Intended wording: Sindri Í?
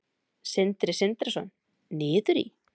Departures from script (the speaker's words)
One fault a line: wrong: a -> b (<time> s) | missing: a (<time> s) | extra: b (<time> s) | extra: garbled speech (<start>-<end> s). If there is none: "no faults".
extra: Sindrason Niður (1.0 s)